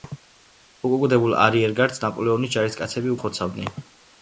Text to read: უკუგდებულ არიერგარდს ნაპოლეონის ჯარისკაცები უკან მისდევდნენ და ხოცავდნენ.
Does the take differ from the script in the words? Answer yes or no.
yes